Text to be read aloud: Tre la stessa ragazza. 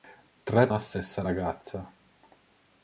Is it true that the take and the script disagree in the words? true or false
false